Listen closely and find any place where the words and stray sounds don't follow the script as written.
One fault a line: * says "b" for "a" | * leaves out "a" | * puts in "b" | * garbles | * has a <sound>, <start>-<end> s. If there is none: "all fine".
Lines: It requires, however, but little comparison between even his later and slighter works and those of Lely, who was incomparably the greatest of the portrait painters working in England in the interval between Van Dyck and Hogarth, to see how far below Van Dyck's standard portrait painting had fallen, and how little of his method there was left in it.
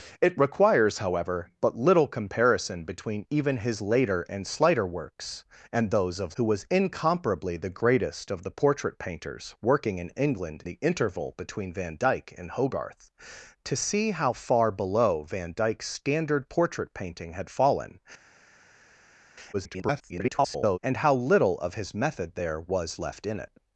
* leaves out "Lely"
* leaves out "in"
* garbles